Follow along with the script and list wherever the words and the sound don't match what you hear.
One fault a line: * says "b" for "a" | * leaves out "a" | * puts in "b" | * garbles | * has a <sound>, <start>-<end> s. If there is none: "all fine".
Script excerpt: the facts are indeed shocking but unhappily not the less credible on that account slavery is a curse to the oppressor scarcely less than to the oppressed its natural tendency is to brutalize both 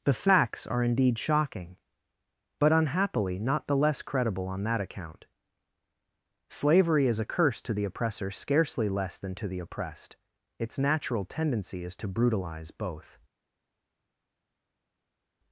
all fine